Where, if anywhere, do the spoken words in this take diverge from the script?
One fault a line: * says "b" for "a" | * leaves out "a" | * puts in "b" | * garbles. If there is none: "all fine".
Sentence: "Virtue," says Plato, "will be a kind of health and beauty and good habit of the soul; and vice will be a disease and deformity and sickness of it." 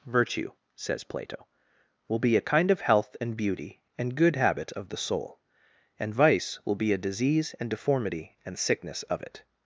all fine